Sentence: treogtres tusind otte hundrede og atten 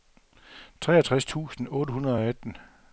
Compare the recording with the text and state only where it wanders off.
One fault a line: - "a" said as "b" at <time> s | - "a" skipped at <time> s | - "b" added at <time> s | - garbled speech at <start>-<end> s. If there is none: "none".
none